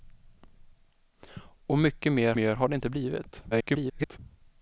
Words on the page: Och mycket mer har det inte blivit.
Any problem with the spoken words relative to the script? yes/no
yes